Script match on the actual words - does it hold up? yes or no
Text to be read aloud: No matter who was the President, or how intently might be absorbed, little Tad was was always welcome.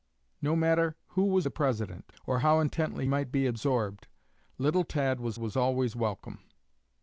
yes